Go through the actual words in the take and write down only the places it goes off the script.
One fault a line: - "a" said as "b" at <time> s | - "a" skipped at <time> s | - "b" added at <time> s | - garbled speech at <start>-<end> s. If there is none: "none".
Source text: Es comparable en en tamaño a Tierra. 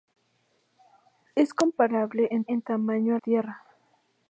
none